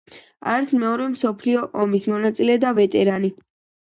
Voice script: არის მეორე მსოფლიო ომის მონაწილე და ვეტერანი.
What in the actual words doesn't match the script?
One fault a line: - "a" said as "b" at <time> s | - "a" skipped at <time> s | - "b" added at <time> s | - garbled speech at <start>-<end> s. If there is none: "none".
none